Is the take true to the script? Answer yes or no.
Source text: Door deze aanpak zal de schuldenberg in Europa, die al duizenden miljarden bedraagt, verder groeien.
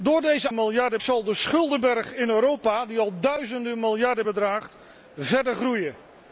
no